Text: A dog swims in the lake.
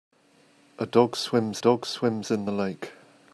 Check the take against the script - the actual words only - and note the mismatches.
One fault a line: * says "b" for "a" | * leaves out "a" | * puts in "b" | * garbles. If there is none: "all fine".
* puts in "dog swims"